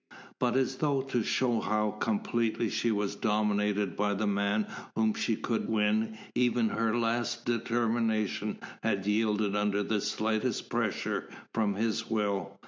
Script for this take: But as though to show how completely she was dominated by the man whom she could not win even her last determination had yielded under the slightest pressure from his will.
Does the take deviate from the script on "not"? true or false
true